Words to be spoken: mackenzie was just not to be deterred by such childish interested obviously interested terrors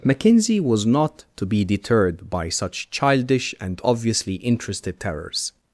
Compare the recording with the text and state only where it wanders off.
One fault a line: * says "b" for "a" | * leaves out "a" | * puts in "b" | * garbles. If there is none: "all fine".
* leaves out "just"
* says "and" for "interested"